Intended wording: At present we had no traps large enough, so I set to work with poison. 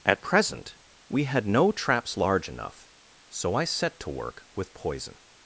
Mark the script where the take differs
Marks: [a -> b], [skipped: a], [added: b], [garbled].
At present we had no traps large enough, so I set to work with poison.